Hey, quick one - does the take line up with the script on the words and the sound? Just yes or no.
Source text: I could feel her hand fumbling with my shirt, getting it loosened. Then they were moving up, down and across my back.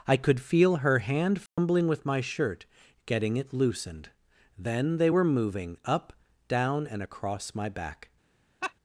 no